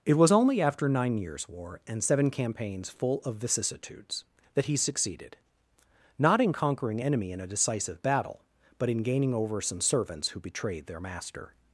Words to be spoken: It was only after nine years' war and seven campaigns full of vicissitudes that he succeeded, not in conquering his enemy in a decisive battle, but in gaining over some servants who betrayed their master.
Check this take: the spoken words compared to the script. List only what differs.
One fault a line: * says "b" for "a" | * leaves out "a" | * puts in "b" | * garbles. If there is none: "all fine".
* leaves out "his"